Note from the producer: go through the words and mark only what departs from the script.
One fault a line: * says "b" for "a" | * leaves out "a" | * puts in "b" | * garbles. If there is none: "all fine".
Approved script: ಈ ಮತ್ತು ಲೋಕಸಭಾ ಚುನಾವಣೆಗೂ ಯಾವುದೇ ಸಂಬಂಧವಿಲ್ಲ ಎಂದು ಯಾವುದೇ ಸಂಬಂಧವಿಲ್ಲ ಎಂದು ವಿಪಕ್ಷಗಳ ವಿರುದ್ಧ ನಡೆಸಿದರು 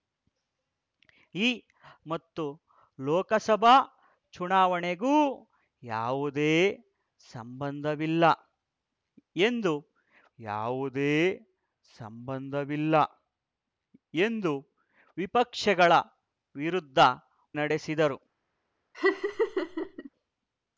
all fine